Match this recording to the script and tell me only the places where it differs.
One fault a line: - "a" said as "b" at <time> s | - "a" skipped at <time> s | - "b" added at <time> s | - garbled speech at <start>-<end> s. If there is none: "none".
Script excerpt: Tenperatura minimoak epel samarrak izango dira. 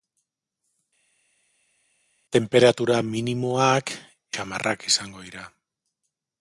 - "epel" skipped at 3.9 s